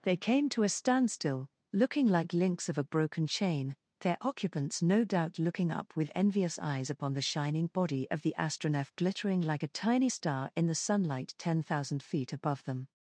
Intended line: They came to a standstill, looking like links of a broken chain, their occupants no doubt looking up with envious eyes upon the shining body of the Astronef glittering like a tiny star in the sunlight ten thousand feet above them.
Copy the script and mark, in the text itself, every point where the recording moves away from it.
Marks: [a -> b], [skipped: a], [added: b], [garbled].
They came to a standstill, looking like links of a broken chain, their occupants no doubt looking up with envious eyes upon the shining body of the Astronef glittering like a tiny star in the sunlight ten thousand feet above them.